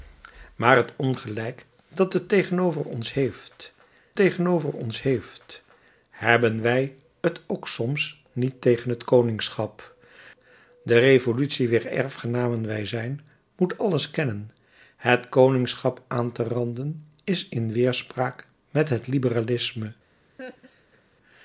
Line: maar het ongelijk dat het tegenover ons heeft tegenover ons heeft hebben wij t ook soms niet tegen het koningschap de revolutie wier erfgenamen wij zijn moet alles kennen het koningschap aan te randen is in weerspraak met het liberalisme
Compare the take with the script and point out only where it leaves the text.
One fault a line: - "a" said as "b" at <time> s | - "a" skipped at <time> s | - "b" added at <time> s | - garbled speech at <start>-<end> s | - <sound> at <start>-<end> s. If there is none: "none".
- laugh at 20.4-21.0 s